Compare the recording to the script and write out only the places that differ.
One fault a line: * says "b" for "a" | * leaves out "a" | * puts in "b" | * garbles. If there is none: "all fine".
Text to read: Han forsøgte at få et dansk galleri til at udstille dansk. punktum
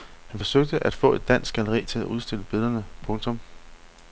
* says "billederne" for "dansk"